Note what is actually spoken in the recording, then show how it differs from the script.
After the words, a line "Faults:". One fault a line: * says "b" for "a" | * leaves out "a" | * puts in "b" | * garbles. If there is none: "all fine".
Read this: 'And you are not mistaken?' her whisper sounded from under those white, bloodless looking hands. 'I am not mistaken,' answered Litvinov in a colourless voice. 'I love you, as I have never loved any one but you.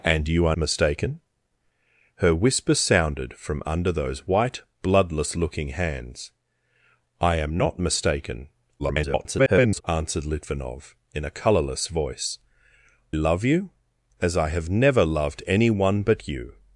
'And you are mistaken?' her whisper sounded from under those white, bloodless looking hands. 'I am not mistaken,' [garbled] answered Litvinov in a colourless voice. 'love you, as I have never loved any one but you.
Faults:
* leaves out "not"
* garbles
* leaves out "I"